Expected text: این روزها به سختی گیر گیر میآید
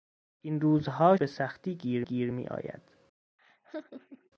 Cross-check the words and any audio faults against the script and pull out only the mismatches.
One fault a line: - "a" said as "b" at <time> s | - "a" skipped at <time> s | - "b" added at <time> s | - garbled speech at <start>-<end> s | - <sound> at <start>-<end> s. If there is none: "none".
- laugh at 3.4-4.3 s